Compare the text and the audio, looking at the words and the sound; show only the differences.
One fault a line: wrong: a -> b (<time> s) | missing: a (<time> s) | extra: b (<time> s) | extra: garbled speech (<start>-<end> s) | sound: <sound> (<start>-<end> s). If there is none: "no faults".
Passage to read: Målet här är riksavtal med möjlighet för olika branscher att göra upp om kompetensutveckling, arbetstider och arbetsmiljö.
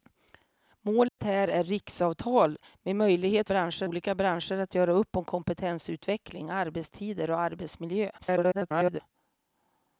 sound: dropout (1.1-1.2 s)
wrong: för -> branscher (3.5 s)
extra: garbled speech (8.2-9.0 s)